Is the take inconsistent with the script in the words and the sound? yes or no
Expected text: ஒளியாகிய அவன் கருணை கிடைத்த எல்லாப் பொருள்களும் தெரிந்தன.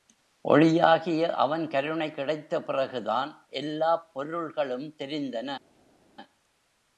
yes